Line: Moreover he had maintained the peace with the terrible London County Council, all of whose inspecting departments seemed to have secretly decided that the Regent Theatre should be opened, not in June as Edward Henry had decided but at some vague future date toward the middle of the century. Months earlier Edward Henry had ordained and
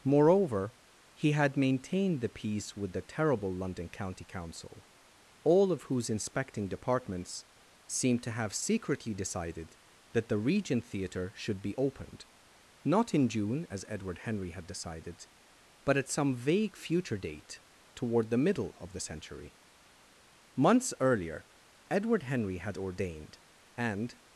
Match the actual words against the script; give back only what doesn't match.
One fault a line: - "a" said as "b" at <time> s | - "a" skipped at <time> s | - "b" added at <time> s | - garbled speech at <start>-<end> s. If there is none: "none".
none